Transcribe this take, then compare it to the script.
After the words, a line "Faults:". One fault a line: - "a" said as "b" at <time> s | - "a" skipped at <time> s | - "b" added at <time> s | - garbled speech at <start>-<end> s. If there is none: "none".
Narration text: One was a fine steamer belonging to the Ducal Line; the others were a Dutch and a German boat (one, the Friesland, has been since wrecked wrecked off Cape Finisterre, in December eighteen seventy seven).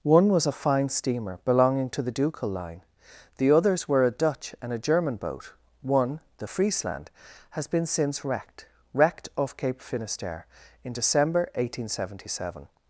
One was a fine steamer belonging to the Ducal Line; the others were a Dutch and a German boat (one, the Friesland, has been since wrecked wrecked off Cape Finisterre, in December eighteen seventy seven).
Faults:
none